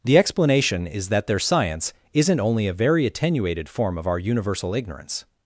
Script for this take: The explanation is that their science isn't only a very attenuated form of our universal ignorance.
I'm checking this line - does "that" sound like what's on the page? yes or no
yes